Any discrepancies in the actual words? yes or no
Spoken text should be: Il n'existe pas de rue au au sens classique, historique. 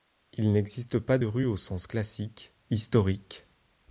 yes